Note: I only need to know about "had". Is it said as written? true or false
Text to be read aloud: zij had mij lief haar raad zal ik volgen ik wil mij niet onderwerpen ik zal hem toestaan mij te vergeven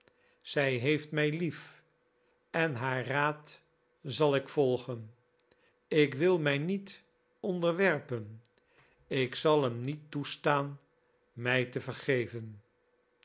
false